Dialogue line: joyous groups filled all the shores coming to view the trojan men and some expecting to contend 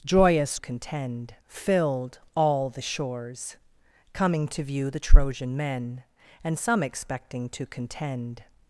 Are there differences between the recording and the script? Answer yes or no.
yes